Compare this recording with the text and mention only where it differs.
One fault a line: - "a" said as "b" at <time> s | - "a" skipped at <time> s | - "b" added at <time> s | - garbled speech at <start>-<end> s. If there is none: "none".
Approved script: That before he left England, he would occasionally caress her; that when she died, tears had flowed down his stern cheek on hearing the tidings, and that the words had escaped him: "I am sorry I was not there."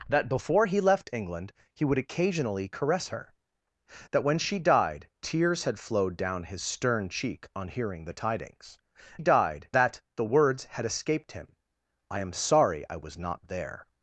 - "and" said as "died" at 9.2 s